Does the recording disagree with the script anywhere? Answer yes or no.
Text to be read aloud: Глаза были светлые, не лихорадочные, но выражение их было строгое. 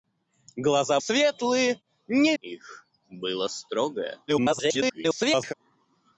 yes